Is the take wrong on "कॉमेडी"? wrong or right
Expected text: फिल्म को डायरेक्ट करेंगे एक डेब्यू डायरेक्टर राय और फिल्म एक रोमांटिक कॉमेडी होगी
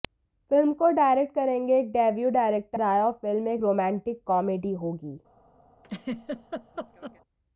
right